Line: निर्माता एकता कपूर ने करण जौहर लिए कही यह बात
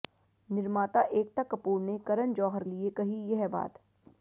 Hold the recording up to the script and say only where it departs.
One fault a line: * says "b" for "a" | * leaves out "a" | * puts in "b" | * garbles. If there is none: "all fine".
all fine